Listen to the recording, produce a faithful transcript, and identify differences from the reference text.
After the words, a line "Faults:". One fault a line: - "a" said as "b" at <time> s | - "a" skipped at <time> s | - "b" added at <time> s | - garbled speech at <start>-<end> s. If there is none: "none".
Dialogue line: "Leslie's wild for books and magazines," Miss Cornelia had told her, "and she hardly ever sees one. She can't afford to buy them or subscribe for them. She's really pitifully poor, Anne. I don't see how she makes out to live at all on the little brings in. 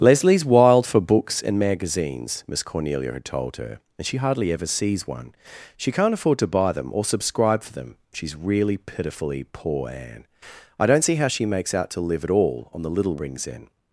"Leslie's wild for books and magazines," Miss Cornelia had told her, "and she hardly ever sees one. She can't afford to buy them or subscribe for them. She's really pitifully poor, Anne. I don't see how she makes out to live at all on the little brings in.
Faults:
none